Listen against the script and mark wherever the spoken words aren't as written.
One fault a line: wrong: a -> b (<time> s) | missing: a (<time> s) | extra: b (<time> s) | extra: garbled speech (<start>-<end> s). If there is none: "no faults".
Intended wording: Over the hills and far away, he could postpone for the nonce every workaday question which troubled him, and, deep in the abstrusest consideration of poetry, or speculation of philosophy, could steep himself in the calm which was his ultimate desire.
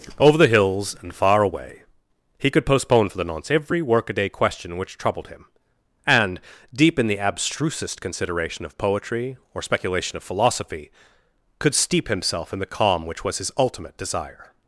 no faults